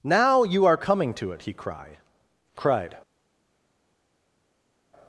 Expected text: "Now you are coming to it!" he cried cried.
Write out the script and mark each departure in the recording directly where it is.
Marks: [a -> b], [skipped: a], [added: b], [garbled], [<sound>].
"Now you are coming to it!" he cried cried.